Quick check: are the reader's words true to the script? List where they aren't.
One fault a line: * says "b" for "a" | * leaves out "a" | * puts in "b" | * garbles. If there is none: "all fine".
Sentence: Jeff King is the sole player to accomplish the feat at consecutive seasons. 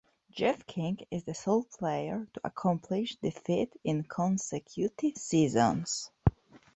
* says "in" for "at"